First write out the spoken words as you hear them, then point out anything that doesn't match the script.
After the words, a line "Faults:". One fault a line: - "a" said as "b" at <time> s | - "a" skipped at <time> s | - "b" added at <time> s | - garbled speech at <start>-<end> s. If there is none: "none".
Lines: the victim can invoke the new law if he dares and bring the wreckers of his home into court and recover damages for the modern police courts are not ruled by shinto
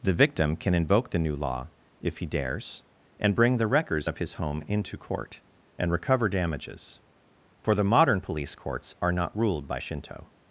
the victim can invoke the new law if he dares and bring the wreckers of his home into court and recover damages for the modern police courts are not ruled by shinto
Faults:
none